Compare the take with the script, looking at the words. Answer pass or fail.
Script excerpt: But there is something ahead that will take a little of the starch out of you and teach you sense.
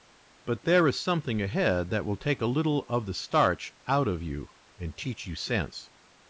pass